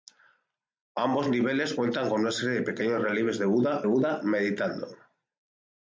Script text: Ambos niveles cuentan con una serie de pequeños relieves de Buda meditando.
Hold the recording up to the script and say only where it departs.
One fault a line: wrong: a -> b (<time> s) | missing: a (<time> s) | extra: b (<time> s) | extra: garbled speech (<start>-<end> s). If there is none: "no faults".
extra: Buda (3.8 s)